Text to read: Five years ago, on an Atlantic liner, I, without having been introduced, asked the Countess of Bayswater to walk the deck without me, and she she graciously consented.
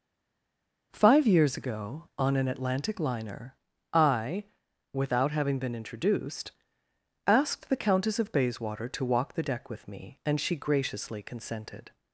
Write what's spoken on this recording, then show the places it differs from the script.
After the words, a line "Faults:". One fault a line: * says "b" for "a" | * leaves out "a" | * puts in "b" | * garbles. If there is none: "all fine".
Five years ago, on an Atlantic liner, I, without having been introduced, asked the Countess of Bayswater to walk the deck with me, and she graciously consented.
Faults:
* says "with" for "without"
* leaves out "she"